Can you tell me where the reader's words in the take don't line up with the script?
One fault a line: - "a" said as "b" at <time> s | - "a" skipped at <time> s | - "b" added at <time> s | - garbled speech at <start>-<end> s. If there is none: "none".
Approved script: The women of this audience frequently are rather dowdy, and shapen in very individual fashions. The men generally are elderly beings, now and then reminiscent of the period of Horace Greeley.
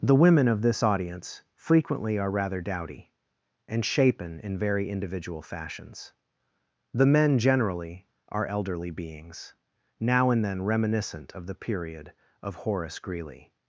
none